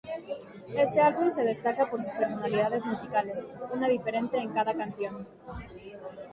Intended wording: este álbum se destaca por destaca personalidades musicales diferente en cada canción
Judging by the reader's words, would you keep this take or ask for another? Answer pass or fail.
fail